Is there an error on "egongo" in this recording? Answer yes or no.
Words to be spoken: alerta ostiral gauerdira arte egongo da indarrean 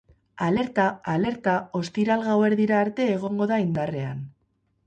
no